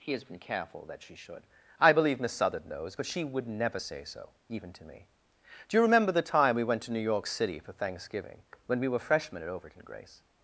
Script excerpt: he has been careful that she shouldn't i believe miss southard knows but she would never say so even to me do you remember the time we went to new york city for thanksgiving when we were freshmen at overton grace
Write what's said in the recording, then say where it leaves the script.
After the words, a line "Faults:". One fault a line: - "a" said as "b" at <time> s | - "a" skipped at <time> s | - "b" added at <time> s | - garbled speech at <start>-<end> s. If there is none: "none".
he has been careful that she should i believe miss southard knows but she would never say so even to me do you remember the time we went to new york city for thanksgiving when we were freshmen at overton grace
Faults:
- "shouldn't" said as "should" at 1.1 s